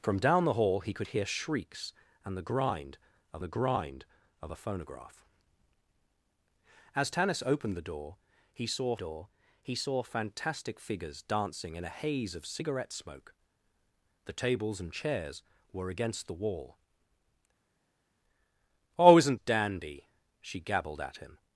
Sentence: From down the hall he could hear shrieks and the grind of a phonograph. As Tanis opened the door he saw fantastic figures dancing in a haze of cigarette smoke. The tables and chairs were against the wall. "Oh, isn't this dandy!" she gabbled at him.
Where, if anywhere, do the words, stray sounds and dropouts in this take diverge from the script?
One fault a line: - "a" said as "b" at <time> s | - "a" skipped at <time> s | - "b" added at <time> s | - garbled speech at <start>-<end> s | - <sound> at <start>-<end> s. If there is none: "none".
- "the grind of" added at 3.4 s
- "door he saw" added at 8.9 s
- "this" skipped at 19.4 s